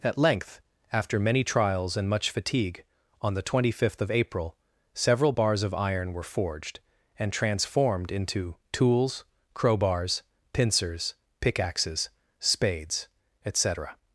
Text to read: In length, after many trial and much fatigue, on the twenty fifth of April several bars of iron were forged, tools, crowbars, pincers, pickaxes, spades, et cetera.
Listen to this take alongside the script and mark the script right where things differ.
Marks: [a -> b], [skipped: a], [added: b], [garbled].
[In -> At] length, after many [trial -> trials] and much fatigue, on the twenty fifth of April several bars of iron were forged, [added: and transformed into] tools, crowbars, pincers, pickaxes, spades, et cetera.